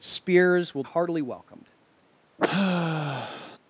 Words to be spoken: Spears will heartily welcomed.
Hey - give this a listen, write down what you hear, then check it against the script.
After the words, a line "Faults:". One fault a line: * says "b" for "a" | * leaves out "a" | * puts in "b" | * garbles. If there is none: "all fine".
Spears will heartily welcomed.
Faults:
all fine